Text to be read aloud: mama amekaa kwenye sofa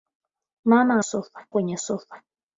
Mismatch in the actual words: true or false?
true